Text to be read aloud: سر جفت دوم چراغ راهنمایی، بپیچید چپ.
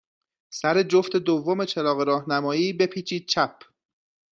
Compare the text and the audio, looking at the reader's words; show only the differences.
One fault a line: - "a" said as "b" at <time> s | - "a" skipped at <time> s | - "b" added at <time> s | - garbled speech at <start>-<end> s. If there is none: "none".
none